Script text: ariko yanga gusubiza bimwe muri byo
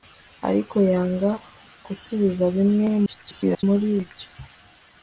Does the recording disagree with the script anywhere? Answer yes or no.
yes